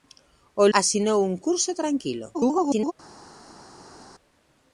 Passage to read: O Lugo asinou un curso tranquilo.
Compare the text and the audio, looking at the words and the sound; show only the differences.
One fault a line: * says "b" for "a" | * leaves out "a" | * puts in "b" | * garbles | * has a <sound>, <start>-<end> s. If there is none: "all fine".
* leaves out "Lugo"
* garbles